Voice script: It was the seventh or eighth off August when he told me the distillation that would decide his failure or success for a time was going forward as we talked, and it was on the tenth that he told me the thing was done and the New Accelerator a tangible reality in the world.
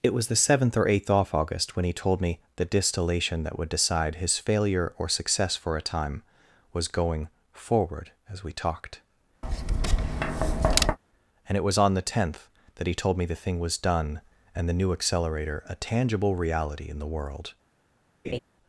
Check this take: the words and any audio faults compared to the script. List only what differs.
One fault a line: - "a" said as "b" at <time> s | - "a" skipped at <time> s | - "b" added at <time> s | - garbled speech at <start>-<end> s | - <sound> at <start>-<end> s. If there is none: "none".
- tap at 9.4-11.0 s
- laugh at 18.2-18.4 s